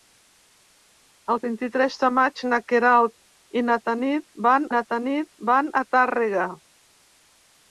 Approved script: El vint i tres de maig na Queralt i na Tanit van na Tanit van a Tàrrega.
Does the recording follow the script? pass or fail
pass